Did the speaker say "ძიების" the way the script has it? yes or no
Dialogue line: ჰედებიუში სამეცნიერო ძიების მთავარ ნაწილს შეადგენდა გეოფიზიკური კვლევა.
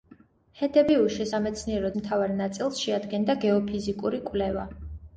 no